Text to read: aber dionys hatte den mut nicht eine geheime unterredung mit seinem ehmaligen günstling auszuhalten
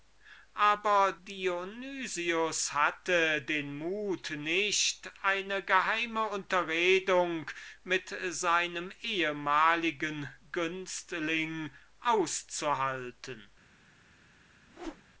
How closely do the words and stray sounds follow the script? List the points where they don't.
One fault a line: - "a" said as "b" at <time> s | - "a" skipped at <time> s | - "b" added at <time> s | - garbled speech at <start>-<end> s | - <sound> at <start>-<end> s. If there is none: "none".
- whoosh at 14.7-15.1 s